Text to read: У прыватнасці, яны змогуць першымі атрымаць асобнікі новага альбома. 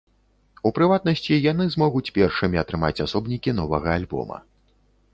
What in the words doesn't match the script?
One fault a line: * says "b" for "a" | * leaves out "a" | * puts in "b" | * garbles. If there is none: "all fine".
all fine